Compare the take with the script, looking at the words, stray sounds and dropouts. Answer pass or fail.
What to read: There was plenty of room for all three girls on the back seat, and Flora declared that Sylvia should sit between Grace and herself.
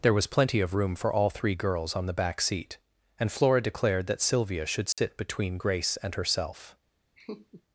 fail